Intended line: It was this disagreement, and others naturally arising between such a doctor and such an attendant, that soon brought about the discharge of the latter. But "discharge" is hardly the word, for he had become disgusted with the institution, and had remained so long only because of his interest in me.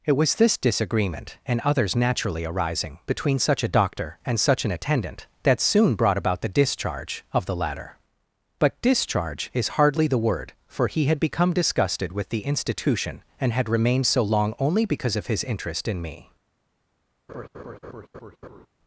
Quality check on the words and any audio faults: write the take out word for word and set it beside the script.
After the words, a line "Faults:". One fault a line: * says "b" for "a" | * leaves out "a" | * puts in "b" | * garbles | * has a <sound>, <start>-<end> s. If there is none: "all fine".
It was this disagreement, and others naturally arising between such a doctor and such an attendant, that soon brought about the discharge of the latter. But "discharge" is hardly the word, for he had become disgusted with the institution, and had remained so long only because of his interest in me.
Faults:
* has a laugh, 17.3-18.7 s